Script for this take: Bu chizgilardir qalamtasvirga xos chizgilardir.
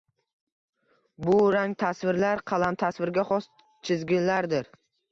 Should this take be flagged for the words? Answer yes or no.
yes